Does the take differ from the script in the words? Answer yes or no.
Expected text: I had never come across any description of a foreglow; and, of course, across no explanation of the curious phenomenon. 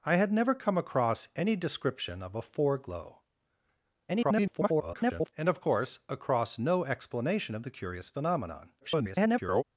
yes